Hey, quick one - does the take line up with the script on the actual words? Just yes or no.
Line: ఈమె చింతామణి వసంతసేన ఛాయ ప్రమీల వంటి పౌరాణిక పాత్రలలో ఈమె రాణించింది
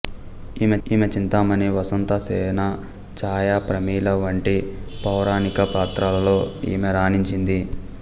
no